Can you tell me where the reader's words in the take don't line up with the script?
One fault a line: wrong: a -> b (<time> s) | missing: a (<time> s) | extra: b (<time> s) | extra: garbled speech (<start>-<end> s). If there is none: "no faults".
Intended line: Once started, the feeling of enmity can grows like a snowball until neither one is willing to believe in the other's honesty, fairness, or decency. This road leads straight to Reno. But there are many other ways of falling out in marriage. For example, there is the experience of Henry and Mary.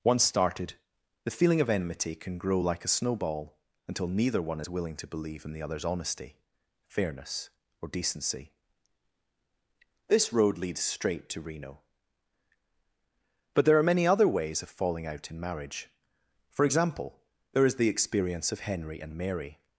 wrong: grows -> grow (2.4 s)